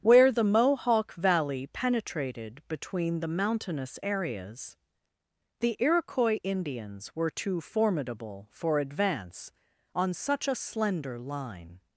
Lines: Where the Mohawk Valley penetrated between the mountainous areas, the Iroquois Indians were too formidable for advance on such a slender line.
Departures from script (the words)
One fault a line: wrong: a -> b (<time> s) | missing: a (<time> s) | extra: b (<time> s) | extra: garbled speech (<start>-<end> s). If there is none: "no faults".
no faults